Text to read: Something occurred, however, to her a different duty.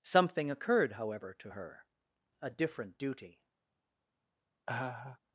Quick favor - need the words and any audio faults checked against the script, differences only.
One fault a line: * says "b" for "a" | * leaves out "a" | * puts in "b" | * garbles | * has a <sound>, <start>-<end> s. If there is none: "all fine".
* has a laugh, 4.7-5.2 s